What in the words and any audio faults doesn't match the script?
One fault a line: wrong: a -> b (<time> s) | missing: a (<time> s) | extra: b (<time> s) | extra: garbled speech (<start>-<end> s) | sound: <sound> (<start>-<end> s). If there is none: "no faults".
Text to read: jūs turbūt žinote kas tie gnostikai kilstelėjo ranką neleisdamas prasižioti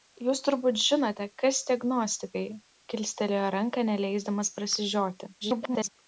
extra: garbled speech (5.4-5.9 s)